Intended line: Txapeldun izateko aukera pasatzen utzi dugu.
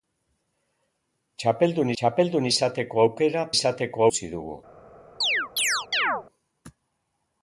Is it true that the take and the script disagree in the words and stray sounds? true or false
true